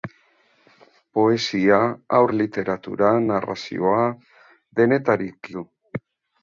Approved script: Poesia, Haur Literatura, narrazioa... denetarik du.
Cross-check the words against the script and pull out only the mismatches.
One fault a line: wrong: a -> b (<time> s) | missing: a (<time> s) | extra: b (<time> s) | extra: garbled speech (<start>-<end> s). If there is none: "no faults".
no faults